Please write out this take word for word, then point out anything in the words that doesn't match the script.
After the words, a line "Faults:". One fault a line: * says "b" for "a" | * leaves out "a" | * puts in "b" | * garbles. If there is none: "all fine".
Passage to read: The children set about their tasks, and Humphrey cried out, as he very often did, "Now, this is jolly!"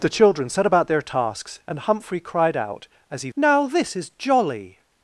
The children set about their tasks, and Humphrey cried out, as he "Now, this is jolly!"
Faults:
* leaves out "very often did"